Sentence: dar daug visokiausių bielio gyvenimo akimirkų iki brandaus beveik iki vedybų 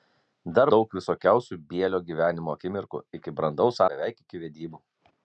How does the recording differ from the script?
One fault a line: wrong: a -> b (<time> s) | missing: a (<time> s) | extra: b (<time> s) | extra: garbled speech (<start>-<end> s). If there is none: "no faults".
no faults